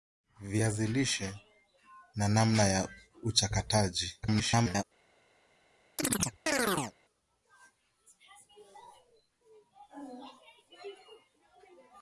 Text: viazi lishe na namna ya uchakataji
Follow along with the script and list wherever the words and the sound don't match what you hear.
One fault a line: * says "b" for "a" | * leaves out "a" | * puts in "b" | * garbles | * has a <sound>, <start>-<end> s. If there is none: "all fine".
* garbles
* has a chirp, 6.0-7.0 s